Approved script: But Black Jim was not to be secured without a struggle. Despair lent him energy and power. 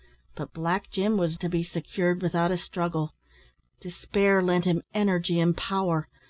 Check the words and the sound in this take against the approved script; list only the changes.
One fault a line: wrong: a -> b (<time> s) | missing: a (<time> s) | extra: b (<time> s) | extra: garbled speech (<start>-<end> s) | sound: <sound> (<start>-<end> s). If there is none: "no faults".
missing: not (1.4 s)